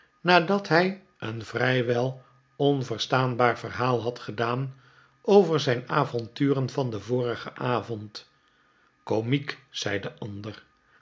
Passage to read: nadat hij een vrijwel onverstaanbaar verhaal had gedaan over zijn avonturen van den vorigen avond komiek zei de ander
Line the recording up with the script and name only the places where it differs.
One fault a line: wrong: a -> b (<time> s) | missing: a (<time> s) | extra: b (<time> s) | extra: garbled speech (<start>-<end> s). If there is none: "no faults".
no faults